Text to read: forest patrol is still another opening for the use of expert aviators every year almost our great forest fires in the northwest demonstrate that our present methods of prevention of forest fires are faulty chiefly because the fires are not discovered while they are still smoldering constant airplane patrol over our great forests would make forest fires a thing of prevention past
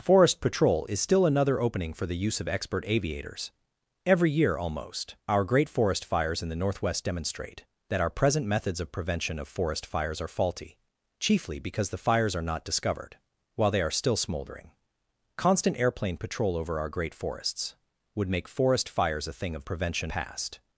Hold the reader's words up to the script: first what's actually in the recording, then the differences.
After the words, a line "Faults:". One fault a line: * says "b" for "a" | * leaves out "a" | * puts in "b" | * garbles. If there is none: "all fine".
forest patrol is still another opening for the use of expert aviators every year almost our great forest fires in the northwest demonstrate that our present methods of prevention of forest fires are faulty chiefly because the fires are not discovered while they are still smoldering constant airplane patrol over our great forests would make forest fires a thing of prevention past
Faults:
all fine